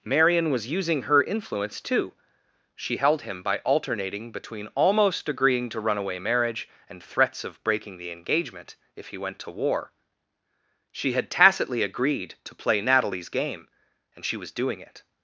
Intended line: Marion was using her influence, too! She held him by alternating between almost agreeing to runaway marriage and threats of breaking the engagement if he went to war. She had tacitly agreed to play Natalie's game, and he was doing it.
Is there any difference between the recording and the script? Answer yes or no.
yes